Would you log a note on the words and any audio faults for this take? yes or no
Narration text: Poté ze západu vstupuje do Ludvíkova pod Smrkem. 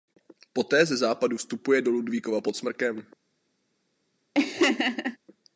yes